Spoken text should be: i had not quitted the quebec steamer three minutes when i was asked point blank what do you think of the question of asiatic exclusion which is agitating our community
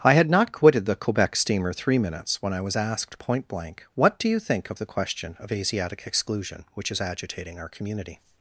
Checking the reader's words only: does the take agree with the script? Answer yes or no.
yes